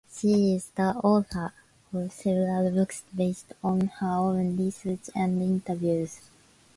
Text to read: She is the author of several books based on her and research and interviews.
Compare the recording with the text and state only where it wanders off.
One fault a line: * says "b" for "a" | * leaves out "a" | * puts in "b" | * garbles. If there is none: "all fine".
* says "own" for "and"